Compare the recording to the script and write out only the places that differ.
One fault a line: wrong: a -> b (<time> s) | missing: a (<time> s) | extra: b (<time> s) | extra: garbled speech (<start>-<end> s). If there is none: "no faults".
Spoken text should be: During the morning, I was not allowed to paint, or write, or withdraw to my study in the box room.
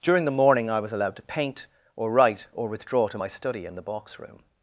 missing: not (0.9 s)